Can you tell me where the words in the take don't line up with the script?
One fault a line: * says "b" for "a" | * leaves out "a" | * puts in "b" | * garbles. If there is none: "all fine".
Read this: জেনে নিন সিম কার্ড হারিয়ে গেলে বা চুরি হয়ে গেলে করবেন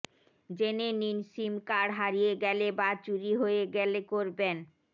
all fine